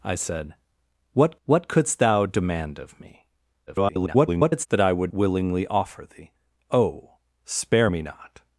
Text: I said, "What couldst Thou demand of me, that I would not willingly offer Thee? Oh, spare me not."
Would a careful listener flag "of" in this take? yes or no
no